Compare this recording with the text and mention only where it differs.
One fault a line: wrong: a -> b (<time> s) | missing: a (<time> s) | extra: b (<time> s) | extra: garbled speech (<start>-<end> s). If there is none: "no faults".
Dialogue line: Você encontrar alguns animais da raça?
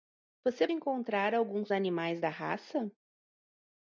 no faults